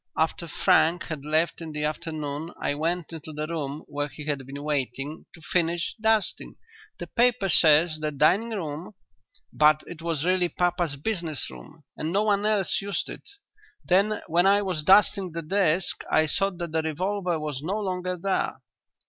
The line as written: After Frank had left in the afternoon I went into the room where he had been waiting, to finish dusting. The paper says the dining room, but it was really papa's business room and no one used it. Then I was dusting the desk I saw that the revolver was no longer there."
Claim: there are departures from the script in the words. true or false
true